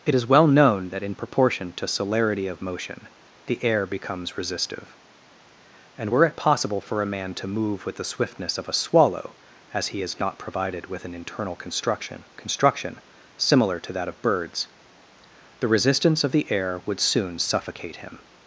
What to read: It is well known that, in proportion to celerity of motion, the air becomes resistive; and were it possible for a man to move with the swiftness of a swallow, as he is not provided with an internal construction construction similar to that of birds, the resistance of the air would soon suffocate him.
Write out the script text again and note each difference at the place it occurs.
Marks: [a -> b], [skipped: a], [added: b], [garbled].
It is well known that, in proportion to celerity of motion, the air becomes resistive; and were it possible for a man to move with the swiftness of a swallow, as he is not provided with an internal construction construction similar to that of birds, the resistance of the air would soon suffocate him.